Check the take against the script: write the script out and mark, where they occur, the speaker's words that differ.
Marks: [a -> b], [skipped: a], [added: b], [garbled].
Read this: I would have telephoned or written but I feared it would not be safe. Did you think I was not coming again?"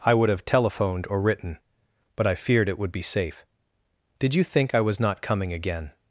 I would have telephoned or written but I feared it would [skipped: not] be safe. Did you think I was not coming again?"